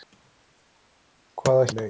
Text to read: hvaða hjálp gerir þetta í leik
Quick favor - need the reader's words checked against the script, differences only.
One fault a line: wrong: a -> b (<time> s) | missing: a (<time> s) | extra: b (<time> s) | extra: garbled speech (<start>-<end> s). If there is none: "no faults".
missing: hjálp gerir þetta (1.7 s)